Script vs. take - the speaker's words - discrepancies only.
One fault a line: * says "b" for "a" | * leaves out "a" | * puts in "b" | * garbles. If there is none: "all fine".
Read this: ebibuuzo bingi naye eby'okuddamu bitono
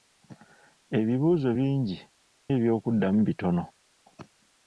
* leaves out "naye"